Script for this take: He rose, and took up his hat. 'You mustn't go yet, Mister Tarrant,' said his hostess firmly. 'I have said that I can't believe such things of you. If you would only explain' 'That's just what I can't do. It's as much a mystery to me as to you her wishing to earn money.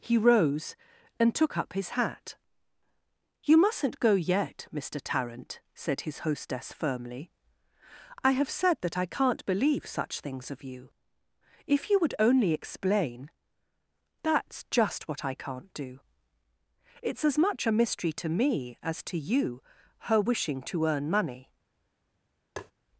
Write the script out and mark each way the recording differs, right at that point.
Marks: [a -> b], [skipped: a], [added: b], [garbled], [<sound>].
He rose, and took up his hat. 'You mustn't go yet, Mister Tarrant,' said his hostess firmly. 'I have said that I can't believe such things of you. If you would only explain' 'That's just what I can't do. It's as much a mystery to me as to you her wishing to earn money. [tap]